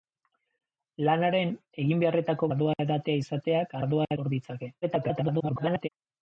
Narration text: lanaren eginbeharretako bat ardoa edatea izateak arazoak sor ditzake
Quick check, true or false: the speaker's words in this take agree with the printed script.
false